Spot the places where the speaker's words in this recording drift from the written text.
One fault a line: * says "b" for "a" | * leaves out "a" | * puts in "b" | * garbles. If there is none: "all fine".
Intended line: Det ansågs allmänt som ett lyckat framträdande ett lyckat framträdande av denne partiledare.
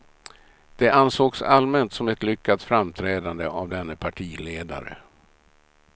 * leaves out "ett lyckat framträdande"